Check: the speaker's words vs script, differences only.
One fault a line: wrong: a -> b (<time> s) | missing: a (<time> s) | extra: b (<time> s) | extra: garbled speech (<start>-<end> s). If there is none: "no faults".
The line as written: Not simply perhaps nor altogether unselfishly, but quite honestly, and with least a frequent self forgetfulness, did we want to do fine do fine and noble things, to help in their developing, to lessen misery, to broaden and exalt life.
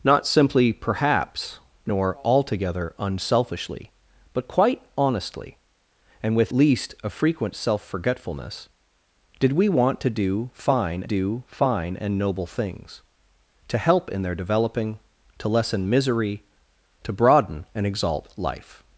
no faults